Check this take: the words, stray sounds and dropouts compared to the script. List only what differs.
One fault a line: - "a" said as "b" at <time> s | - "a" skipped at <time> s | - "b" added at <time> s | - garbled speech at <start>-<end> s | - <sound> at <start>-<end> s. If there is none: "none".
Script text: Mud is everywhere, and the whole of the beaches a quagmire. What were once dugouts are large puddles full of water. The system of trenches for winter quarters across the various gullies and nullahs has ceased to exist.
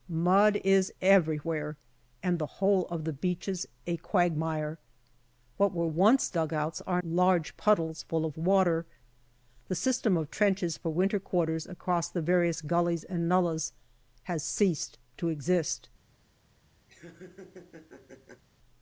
- laugh at 16.9-18.4 s